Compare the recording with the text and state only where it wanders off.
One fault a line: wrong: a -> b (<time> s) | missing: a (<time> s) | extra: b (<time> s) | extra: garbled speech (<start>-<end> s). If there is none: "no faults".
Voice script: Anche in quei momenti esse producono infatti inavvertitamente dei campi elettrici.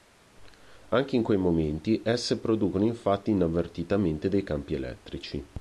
no faults